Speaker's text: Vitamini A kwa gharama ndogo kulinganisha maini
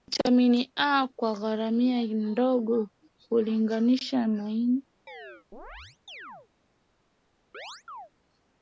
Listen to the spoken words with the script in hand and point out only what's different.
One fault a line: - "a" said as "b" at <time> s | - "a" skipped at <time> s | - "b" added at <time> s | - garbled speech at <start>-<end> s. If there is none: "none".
none